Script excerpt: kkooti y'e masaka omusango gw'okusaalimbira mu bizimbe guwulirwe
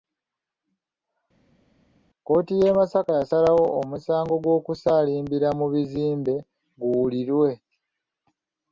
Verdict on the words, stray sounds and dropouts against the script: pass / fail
fail